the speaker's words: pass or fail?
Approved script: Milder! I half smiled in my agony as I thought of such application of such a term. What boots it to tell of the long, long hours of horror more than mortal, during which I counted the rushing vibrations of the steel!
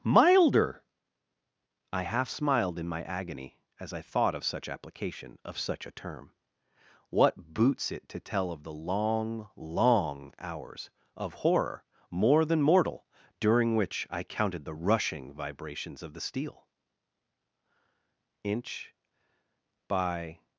fail